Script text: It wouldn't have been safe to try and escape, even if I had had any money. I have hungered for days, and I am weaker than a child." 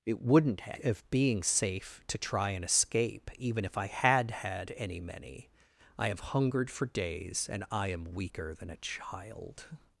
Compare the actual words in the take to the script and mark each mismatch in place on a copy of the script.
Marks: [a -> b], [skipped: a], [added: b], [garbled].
It wouldn't have [been -> being] safe to try and escape, even if I had had any [money. -> many] I have hungered for days, and I am weaker than a child."